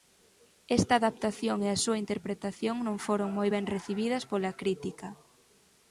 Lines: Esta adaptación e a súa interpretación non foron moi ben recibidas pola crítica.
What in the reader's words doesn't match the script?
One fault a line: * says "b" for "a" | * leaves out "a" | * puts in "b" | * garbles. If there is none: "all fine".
all fine